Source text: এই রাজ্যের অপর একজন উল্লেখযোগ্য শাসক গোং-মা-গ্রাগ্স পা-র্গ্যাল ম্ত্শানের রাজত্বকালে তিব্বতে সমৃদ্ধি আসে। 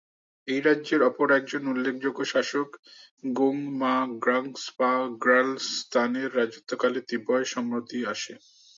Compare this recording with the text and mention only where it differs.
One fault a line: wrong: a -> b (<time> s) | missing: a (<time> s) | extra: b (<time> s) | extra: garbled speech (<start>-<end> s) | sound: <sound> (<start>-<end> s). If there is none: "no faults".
no faults